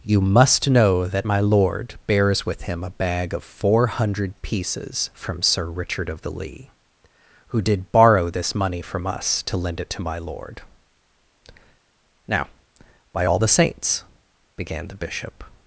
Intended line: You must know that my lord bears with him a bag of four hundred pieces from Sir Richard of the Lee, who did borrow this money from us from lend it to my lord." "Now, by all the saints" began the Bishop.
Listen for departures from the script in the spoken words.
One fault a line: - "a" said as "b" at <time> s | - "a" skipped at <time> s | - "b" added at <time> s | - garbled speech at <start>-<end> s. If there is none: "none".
- "from" said as "to" at 9.4 s